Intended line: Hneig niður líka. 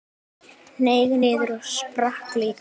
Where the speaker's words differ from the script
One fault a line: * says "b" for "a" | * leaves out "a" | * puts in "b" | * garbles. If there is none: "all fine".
* puts in "og sprakk"